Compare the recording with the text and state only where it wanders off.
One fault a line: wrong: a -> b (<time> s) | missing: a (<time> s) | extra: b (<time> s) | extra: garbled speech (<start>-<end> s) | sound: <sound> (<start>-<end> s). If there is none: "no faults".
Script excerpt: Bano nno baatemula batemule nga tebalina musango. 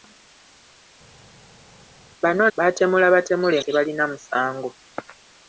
missing: nno (2.5 s)
missing: nga (3.6 s)